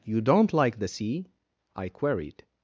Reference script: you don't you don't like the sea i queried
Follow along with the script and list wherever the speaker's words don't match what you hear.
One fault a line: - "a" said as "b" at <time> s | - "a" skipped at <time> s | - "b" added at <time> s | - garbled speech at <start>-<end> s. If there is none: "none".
- "you don't" skipped at 0.5 s